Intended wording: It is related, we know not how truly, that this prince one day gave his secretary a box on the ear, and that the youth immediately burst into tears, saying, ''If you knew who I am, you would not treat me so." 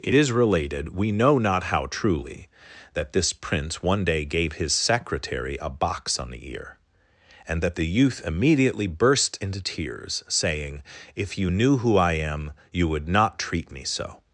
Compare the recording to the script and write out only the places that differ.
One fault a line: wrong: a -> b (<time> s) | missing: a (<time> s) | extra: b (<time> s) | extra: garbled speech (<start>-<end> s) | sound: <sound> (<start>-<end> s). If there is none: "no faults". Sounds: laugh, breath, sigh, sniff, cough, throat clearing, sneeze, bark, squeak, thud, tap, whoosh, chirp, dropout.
no faults